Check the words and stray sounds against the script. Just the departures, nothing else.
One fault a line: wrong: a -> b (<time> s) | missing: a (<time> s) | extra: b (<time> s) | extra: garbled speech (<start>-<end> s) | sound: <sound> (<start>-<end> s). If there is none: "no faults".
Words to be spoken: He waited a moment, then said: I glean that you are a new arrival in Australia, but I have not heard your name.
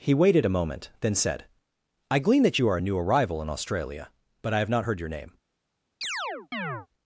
sound: chirp (6.0-6.9 s)